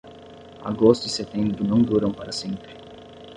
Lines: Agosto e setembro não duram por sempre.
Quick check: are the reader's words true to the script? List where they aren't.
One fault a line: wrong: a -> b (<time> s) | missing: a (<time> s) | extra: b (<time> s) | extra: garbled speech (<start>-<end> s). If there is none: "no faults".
wrong: por -> para (2.1 s)